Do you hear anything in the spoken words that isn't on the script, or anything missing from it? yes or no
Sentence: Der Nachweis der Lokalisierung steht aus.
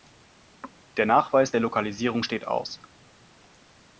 no